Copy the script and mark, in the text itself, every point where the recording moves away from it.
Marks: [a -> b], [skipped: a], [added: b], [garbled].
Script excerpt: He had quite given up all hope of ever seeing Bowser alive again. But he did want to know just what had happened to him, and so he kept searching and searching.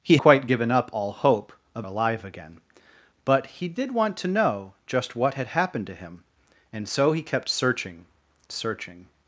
He [skipped: had] quite given up all hope of [skipped: ever seeing Bowser] alive again. But he did want to know just what had happened to him, and so he kept searching [skipped: and] searching.